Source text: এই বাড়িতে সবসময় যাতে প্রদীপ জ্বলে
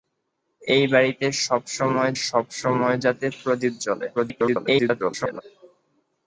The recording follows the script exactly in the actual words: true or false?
false